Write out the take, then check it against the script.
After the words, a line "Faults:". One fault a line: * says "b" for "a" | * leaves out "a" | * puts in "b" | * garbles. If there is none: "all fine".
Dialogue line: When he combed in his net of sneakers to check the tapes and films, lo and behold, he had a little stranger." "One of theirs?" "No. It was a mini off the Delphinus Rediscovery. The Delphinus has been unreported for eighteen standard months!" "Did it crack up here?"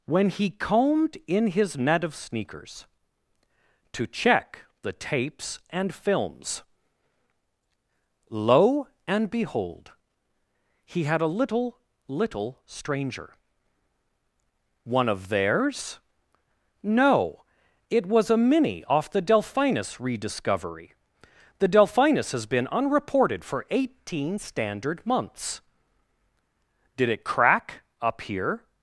When he combed in his net of sneakers to check the tapes and films, lo and behold, he had a little little stranger." "One of theirs?" "No. It was a mini off the Delphinus Rediscovery. The Delphinus has been unreported for eighteen standard months!" "Did it crack up here?"
Faults:
* puts in "little"